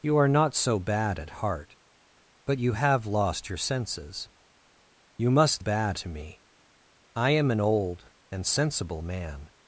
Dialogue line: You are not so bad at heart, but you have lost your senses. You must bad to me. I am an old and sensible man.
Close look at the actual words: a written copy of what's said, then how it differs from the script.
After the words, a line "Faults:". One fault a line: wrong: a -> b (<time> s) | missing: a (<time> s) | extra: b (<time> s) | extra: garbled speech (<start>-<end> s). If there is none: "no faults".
You are not so bad at heart, but you have lost your senses. You must bad to me. I am an old and sensible man.
Faults:
no faults